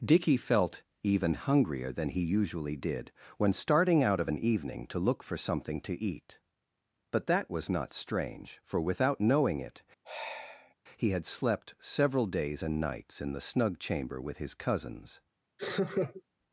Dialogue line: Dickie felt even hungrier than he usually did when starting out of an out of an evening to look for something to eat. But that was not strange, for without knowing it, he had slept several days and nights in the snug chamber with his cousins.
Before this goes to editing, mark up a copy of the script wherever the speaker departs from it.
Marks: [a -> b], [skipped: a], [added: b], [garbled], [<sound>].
Dickie felt even hungrier than he usually did when starting out of an [skipped: out of an] evening to look for something to eat. But that was not strange, for without knowing it, [sigh] he had slept several days and nights in the snug chamber with his cousins. [laugh]